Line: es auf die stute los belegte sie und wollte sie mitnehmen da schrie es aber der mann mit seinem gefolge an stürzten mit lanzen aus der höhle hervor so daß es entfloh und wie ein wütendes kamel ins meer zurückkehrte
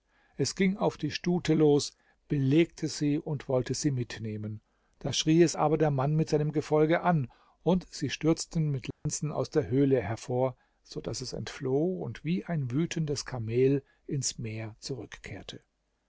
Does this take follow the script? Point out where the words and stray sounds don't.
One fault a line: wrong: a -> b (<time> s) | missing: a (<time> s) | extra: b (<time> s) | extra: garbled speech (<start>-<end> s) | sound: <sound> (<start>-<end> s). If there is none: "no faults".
extra: ging (0.6 s)
extra: und sie (7.6 s)
sound: dropout (8.9-9.1 s)